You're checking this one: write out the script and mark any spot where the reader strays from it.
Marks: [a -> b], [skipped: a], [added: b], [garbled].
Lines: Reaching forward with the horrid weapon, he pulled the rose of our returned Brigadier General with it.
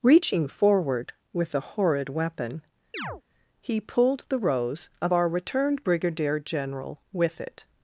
Reaching forward with the horrid weapon, he pulled the rose of our returned Brigadier General with it.